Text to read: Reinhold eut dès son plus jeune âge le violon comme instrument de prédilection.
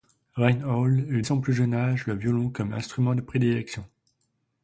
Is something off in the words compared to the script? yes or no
yes